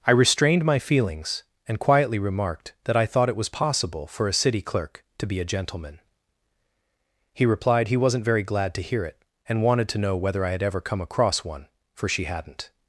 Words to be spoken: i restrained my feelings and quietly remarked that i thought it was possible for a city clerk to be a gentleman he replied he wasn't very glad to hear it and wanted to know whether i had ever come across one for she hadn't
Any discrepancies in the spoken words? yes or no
no